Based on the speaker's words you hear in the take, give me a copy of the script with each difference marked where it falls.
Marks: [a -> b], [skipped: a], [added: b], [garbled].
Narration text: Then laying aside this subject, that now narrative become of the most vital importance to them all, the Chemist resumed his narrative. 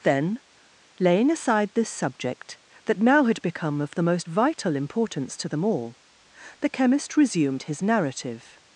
Then laying aside this subject, that now [narrative -> had] become of the most vital importance to them all, the Chemist resumed his narrative.